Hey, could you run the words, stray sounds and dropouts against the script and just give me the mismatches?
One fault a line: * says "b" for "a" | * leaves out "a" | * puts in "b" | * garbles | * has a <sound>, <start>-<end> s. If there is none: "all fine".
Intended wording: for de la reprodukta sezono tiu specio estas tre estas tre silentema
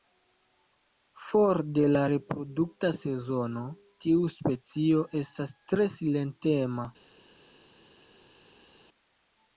* leaves out "estas tre"